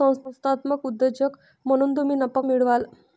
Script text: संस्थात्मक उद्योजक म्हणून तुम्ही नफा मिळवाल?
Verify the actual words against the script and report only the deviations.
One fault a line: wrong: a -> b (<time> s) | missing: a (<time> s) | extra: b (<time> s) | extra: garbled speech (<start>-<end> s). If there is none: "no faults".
no faults